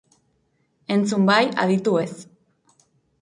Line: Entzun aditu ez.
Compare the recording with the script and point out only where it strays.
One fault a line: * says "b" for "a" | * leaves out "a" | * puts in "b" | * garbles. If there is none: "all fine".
* puts in "bai"